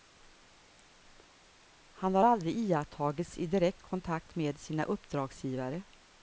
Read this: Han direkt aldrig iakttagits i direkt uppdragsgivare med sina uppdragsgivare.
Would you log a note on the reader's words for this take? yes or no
yes